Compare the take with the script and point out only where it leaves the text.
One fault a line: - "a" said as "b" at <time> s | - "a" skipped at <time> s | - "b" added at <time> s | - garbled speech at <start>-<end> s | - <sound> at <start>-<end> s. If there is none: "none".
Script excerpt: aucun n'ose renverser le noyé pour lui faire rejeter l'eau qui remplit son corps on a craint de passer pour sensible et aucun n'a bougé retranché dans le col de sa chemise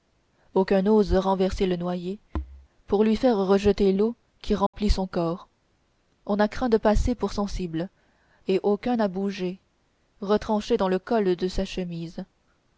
- dropout at 4.7-4.7 s